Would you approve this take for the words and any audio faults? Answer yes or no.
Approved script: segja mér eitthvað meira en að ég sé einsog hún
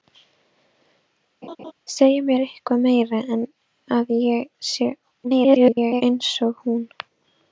no